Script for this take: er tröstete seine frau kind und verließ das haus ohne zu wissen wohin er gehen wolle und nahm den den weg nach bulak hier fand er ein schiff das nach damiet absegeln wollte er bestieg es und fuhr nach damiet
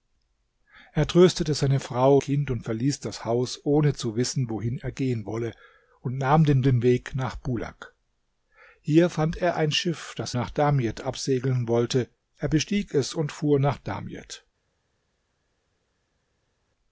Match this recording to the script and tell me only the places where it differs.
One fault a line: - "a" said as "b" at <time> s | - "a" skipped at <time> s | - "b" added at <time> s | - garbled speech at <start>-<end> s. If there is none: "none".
none